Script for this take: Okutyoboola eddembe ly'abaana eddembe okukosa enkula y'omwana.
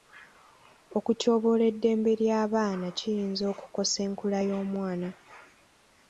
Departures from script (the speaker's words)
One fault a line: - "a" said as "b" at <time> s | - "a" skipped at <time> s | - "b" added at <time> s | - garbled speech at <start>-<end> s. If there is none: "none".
- "eddembe" said as "kiyinza" at 3.0 s